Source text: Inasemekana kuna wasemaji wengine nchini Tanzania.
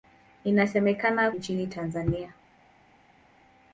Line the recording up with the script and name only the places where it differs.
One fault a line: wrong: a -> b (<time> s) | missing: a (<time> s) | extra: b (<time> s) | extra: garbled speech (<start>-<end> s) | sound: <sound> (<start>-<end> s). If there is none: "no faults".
missing: kuna wasemaji wengine (1.3 s)